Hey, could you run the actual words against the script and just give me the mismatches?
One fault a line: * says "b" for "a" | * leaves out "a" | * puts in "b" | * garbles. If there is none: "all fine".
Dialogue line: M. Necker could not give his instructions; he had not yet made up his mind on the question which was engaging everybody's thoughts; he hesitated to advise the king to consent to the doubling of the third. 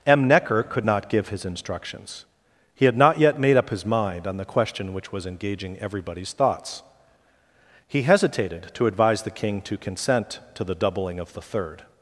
all fine